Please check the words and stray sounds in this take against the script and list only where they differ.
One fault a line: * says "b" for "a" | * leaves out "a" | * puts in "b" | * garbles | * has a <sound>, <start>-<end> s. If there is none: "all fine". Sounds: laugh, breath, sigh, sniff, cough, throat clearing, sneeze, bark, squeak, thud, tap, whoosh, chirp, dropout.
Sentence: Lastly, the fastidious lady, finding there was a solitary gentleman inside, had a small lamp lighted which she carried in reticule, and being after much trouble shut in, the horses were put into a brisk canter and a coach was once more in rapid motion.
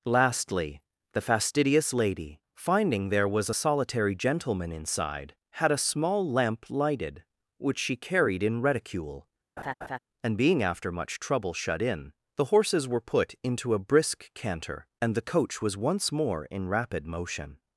* has a laugh, 9.6-10.0 s
* says "the" for "a"